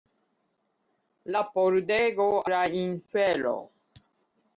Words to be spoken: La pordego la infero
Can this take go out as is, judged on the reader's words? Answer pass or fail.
pass